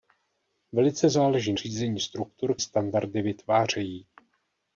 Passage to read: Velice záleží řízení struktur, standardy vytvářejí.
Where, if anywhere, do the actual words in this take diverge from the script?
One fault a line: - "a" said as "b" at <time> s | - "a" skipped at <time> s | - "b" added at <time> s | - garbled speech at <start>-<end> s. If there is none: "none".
none